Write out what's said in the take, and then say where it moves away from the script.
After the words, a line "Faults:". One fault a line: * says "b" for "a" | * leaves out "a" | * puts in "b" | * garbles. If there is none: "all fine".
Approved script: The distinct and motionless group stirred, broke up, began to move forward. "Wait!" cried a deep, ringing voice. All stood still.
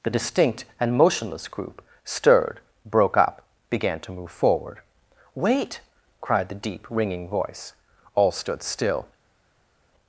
The distinct and motionless group stirred, broke up, began to move forward. "Wait!" cried the deep, ringing voice. All stood still.
Faults:
* says "the" for "a"